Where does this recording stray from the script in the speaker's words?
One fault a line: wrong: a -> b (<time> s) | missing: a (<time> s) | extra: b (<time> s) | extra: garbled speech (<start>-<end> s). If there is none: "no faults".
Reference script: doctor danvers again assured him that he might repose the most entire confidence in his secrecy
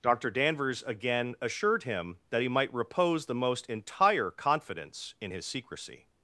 no faults